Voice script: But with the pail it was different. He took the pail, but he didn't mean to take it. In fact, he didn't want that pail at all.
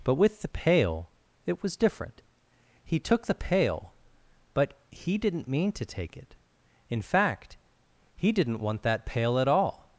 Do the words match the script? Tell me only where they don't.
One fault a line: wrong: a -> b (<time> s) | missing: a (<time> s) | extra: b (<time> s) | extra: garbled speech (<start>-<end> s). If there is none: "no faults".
no faults